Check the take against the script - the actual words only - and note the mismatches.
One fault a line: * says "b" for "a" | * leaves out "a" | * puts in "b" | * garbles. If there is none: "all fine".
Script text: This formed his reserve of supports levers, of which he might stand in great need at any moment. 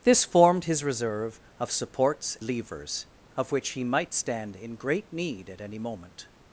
all fine